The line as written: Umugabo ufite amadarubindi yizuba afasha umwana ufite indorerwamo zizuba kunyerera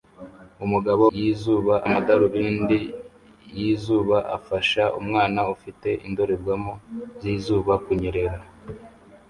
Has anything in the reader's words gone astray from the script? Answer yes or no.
yes